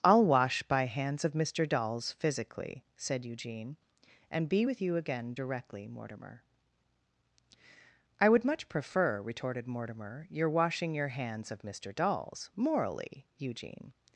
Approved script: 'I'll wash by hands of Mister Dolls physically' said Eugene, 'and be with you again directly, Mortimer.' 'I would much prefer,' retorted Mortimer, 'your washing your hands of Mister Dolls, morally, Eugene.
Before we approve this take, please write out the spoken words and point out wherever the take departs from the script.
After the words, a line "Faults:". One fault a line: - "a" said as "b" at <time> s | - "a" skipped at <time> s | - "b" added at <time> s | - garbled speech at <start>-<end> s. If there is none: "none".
'I'll wash by hands of Mister Dolls physically' said Eugene, 'and be with you again directly, Mortimer.' 'I would much prefer,' retorted Mortimer, 'your washing your hands of Mister Dolls, morally, Eugene.
Faults:
none